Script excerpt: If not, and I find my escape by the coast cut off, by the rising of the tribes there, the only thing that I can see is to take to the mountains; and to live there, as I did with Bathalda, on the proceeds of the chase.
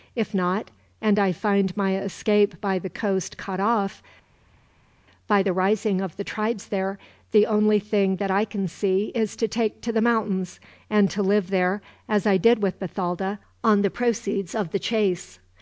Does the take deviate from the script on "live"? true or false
false